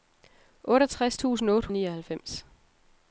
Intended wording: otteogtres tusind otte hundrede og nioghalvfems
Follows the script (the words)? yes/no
no